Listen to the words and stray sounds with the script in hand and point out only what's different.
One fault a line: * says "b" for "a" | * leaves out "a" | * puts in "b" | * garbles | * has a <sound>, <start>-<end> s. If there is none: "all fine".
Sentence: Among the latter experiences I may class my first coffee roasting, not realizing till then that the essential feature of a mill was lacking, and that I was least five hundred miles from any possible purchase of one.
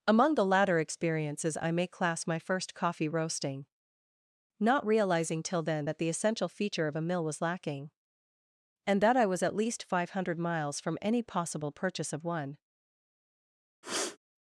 * puts in "at"
* has a sniff, 13.8-14.2 s